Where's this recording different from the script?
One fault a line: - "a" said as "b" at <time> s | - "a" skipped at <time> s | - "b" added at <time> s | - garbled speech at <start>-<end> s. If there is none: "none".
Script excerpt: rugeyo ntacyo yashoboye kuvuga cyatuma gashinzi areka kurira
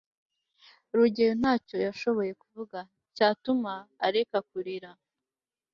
- "gashinzi" skipped at 3.7 s